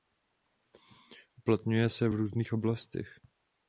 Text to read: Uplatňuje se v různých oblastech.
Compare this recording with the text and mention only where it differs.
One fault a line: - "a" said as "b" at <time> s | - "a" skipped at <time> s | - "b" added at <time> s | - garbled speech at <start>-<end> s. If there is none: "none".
none